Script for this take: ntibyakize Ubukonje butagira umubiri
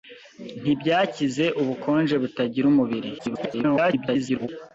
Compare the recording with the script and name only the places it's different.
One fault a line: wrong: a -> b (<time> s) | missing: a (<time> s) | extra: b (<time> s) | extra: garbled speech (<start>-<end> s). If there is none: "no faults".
extra: garbled speech (3.2-4.5 s)